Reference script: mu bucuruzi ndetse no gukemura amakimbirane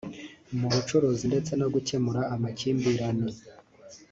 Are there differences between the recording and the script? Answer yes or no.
no